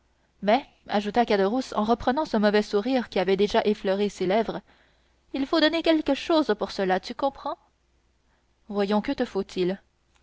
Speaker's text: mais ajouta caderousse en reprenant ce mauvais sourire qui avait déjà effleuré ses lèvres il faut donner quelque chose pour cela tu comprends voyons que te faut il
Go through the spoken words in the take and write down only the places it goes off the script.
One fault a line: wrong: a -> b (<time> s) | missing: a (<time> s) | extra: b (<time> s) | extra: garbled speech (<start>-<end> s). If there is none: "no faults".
no faults